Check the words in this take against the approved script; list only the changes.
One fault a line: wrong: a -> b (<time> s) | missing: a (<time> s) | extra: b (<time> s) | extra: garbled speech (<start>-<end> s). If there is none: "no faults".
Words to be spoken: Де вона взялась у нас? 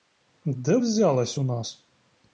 missing: вона (0.8 s)